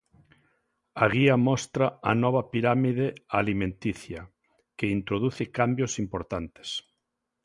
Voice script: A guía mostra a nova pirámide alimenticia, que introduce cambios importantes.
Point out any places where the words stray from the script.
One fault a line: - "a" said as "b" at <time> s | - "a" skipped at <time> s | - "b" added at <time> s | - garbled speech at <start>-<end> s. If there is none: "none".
none